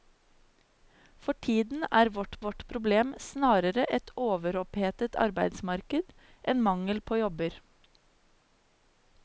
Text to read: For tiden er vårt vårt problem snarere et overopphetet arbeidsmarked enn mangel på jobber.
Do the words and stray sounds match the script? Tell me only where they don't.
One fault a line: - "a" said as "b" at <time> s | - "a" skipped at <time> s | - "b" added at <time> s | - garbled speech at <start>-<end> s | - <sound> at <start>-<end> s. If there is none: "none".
none